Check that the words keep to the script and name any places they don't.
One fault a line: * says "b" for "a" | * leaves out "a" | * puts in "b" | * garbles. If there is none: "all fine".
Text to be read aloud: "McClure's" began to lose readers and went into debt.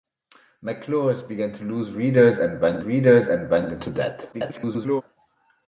* puts in "readers and went"
* garbles